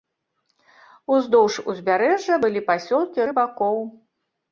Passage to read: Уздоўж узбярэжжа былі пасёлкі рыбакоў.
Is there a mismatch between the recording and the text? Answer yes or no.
no